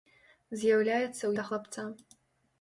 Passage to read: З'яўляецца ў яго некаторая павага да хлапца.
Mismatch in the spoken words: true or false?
true